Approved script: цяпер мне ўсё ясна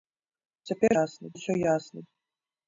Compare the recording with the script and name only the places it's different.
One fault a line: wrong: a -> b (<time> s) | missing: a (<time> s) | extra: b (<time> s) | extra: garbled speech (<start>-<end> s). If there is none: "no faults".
wrong: мне -> ясна (1.0 s)